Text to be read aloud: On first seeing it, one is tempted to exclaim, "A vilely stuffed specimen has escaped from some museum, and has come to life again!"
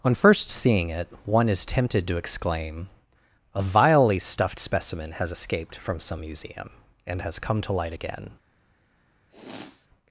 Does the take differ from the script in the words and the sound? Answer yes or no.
yes